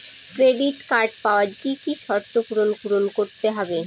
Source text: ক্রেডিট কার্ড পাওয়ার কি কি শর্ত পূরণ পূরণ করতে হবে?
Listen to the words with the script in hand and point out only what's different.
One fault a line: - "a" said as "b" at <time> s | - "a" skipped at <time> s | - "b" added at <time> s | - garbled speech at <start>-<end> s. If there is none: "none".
none